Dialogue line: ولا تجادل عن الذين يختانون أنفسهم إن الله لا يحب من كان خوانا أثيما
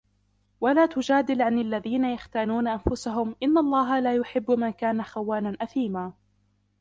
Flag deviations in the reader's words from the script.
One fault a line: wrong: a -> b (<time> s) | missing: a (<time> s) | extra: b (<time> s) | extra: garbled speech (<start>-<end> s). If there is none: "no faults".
no faults